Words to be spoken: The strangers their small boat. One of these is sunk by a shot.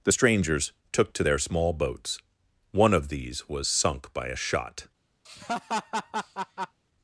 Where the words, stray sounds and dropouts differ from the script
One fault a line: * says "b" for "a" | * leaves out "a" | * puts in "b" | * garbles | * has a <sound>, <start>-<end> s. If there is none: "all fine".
* puts in "took to"
* says "boats" for "boat"
* says "was" for "is"
* has a laugh, 5.3-6.8 s